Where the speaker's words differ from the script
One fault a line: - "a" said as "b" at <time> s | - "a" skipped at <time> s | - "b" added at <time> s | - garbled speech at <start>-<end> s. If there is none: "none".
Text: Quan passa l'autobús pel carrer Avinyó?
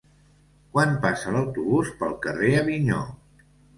none